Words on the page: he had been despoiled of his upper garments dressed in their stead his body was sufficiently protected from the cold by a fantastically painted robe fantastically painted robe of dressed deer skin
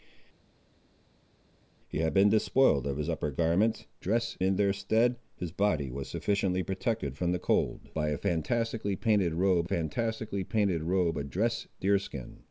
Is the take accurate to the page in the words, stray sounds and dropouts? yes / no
yes